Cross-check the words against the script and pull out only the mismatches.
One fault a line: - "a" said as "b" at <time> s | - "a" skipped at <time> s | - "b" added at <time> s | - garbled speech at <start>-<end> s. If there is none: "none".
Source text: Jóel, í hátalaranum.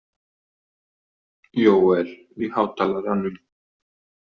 none